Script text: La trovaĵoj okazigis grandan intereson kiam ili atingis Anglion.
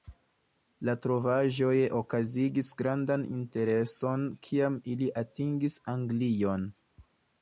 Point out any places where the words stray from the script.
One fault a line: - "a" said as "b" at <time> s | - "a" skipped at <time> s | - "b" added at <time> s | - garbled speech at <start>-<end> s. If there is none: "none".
none